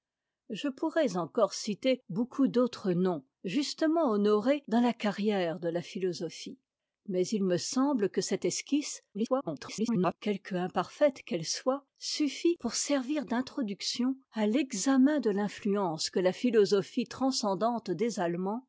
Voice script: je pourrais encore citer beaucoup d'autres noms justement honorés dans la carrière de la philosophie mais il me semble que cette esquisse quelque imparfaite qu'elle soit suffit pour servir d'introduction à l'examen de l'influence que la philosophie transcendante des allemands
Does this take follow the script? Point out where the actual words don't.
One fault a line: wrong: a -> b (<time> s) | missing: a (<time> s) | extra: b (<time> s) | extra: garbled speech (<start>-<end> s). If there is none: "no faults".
extra: garbled speech (9.1-10.2 s)